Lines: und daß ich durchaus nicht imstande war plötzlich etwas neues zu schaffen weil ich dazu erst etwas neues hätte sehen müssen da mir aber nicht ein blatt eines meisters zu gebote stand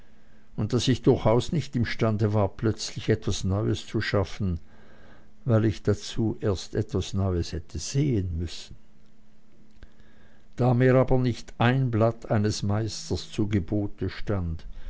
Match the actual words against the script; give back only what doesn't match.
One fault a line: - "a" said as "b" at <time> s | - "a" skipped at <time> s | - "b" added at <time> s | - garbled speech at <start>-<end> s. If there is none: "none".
none